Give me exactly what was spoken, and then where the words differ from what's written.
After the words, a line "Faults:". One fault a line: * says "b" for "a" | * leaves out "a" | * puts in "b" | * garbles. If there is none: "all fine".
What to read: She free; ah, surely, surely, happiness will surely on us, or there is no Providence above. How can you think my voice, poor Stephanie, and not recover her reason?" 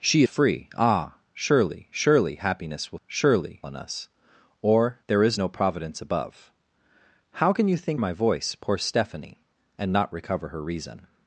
She free; ah, surely, surely, happiness will surely on us, or there is no Providence above. How can you think my voice, poor Stephanie, and not recover her reason?"
Faults:
all fine